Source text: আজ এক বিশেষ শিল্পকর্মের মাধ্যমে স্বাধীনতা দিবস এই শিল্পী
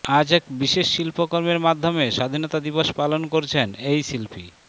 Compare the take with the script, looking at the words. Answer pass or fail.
fail